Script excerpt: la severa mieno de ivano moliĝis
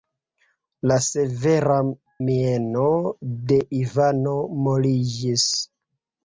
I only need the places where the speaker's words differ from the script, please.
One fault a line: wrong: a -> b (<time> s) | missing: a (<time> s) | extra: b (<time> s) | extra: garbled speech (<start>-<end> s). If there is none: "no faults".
no faults